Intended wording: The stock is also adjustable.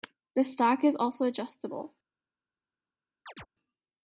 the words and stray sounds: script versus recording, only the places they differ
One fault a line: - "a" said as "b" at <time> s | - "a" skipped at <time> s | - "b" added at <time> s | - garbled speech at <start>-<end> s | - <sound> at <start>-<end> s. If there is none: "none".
- chirp at 3.3-3.5 s